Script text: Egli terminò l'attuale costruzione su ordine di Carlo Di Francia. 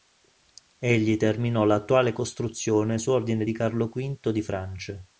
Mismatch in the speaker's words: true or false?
true